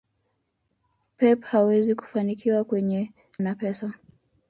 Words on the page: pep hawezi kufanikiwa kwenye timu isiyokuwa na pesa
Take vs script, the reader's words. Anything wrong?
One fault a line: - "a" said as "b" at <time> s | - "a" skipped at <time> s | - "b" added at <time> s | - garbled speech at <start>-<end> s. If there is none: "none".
- "timu isiyokuwa" skipped at 3.1 s